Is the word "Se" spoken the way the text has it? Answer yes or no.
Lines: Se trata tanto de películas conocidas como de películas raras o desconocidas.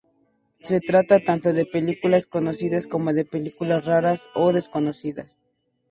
yes